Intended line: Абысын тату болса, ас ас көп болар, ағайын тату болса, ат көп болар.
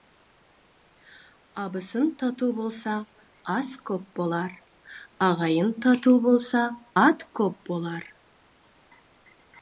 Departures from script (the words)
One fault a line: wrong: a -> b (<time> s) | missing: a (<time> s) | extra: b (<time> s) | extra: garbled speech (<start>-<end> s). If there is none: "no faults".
missing: ас (3.7 s)